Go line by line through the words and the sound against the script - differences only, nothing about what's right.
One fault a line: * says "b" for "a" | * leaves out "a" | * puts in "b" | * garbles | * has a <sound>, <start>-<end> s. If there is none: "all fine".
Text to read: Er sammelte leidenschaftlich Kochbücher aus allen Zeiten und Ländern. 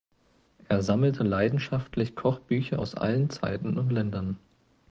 all fine